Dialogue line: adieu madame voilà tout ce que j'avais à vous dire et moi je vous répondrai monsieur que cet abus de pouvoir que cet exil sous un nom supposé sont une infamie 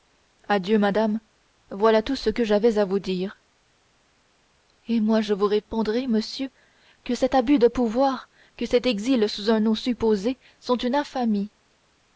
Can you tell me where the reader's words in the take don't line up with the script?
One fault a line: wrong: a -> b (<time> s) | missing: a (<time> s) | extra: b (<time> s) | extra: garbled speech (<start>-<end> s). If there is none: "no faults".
no faults